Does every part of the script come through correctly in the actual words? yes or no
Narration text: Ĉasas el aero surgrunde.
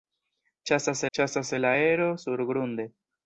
no